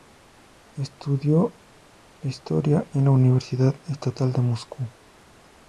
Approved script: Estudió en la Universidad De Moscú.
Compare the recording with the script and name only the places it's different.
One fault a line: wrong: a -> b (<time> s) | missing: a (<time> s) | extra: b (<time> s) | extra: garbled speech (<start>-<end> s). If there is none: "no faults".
extra: historia (2.2 s)
extra: Estatal (3.9 s)